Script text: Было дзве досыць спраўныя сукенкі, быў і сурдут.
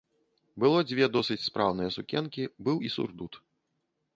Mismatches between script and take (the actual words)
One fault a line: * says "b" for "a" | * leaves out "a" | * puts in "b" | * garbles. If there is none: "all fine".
all fine